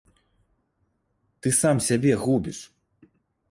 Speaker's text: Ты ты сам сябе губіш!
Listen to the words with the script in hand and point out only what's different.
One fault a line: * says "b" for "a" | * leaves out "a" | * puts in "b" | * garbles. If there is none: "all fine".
* leaves out "ты"